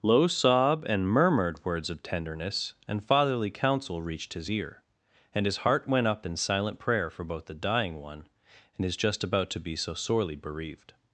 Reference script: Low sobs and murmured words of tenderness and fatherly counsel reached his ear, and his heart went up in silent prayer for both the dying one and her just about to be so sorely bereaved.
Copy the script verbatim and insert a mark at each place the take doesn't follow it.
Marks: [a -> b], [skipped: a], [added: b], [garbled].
Low [sobs -> sob] and murmured words of tenderness and fatherly counsel reached his ear, and his heart went up in silent prayer for both the dying one and [her -> his] just about to be so sorely bereaved.